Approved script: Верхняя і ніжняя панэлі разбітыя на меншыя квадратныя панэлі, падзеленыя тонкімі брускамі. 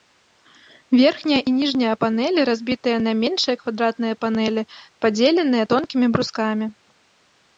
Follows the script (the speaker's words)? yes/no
yes